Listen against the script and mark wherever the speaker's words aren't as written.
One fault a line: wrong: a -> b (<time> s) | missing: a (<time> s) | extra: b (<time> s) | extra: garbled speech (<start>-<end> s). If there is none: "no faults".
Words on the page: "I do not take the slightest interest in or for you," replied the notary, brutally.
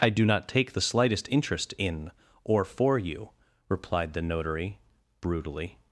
no faults